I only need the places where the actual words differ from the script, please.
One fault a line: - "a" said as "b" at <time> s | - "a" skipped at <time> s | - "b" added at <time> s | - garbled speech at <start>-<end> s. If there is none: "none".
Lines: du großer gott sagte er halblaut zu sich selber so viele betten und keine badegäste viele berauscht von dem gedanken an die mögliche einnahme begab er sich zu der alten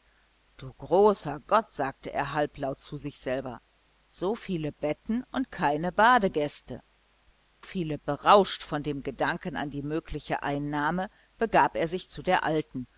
none